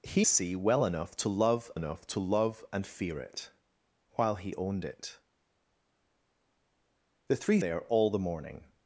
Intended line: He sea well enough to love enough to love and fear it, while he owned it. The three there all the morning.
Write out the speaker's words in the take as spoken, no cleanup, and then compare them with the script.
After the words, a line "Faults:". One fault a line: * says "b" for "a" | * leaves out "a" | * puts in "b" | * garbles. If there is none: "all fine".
He sea well enough to love enough to love and fear it, while he owned it. The three there all the morning.
Faults:
all fine